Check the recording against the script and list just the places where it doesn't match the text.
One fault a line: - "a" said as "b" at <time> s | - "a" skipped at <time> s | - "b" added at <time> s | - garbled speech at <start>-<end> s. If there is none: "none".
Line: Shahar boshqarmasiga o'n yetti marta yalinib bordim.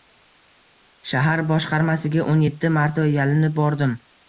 none